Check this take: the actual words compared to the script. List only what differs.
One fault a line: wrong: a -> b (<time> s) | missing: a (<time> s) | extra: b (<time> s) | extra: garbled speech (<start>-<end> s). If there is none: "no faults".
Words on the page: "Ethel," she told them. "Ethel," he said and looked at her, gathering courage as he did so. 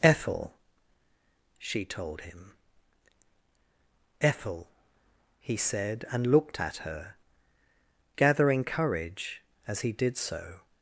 wrong: them -> him (2.2 s)